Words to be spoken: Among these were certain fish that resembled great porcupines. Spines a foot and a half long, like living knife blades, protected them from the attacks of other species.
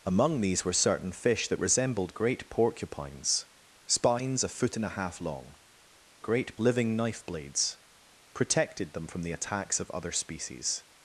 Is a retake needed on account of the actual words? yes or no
yes